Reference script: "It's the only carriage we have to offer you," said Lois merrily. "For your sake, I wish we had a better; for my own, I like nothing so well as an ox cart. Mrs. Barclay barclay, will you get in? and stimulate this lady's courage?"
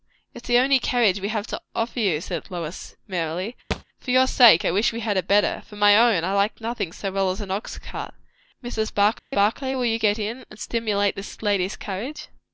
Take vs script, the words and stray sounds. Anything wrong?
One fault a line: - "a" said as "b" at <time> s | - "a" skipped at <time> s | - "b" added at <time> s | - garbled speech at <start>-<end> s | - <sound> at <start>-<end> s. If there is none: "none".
- thud at 3.7-3.8 s
- dropout at 9.2-9.3 s